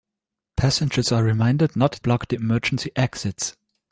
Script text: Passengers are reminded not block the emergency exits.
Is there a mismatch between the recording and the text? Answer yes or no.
no